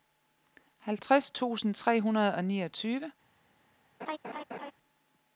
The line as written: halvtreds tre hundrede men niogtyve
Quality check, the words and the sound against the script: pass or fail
fail